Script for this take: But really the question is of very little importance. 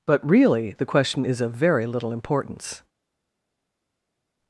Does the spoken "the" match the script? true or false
true